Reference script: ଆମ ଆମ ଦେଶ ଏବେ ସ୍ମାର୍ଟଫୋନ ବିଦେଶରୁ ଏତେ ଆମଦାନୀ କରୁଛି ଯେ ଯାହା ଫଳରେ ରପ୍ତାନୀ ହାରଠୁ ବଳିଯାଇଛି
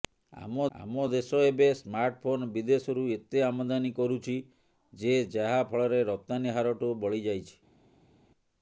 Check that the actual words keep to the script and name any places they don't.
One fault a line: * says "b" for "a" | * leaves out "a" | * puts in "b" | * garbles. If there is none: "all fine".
all fine